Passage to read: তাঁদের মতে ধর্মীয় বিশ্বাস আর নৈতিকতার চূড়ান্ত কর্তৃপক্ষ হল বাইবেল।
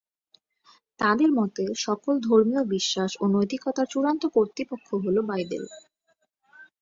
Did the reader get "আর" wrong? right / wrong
wrong